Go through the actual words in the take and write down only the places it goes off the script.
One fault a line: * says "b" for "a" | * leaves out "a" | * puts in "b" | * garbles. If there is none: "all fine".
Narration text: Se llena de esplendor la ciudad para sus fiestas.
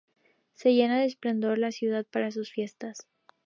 all fine